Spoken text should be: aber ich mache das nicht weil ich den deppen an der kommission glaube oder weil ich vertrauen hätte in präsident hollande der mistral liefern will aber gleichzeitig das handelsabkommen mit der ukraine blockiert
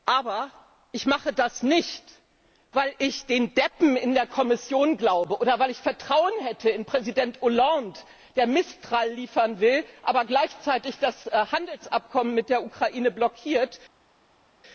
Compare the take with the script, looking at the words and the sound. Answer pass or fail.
fail